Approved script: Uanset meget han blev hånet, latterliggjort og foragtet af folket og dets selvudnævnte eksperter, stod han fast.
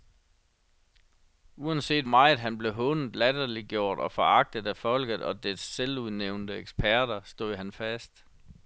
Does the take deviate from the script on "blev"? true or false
false